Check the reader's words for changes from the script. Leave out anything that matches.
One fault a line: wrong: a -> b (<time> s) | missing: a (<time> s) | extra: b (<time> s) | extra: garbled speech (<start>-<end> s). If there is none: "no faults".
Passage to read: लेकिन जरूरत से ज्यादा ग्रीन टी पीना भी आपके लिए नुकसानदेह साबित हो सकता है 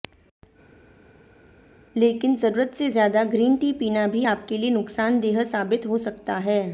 no faults